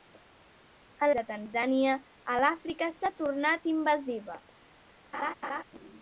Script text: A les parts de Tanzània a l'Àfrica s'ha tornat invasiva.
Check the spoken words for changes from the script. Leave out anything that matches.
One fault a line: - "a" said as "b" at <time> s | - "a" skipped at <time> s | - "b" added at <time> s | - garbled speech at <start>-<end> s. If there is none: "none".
- "les parts" skipped at 1.1 s